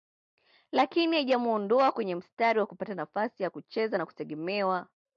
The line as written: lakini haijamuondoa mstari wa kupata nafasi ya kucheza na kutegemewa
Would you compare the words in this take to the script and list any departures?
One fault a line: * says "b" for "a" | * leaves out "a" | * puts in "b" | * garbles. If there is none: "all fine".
* puts in "kwenye"